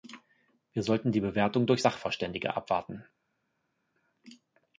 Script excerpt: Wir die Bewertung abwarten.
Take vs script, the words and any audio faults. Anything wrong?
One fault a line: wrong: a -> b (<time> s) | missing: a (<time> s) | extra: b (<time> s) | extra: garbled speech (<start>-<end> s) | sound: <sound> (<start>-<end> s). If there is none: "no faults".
extra: sollten (0.8 s)
extra: durch Sachverständige (1.7 s)